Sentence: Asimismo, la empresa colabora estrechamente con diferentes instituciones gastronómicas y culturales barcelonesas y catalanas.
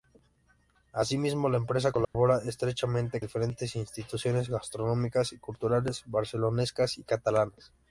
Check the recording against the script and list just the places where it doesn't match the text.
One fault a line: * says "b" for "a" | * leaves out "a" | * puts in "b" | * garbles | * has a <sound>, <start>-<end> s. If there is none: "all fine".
* has a dropout, 2.0-2.1 s
* leaves out "con"